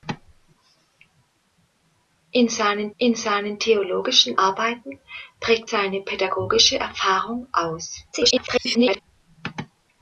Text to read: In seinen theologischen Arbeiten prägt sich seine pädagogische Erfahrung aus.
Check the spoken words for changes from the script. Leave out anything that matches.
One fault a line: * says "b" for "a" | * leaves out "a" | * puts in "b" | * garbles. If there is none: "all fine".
* puts in "in seinen"
* leaves out "sich"
* garbles